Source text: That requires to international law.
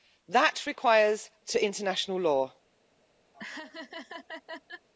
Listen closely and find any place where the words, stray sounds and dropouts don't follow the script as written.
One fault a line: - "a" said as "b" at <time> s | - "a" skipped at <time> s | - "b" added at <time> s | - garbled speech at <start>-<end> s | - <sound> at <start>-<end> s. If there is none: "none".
- laugh at 3.3-4.9 s